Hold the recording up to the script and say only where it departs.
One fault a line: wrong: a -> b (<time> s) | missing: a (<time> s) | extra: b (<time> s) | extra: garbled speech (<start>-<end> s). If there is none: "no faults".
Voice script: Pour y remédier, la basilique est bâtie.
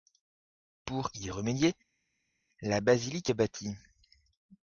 no faults